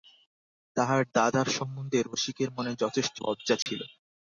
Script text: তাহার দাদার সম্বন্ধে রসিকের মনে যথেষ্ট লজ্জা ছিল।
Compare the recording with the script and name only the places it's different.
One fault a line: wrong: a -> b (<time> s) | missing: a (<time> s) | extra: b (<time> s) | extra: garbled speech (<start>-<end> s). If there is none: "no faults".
no faults